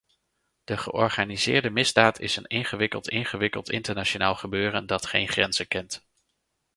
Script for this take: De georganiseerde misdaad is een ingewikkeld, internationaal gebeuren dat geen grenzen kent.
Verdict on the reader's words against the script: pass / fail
fail